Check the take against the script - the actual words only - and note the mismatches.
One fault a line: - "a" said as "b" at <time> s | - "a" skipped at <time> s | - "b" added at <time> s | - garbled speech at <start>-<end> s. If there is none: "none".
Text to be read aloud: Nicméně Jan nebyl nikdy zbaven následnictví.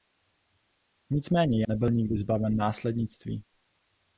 - "Jan" skipped at 1.6 s